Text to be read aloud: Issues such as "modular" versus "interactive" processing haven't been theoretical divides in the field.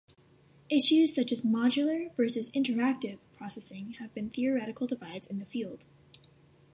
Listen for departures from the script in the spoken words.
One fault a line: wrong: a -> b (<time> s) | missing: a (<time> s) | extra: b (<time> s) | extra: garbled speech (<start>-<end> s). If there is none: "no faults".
wrong: haven't -> have (4.0 s)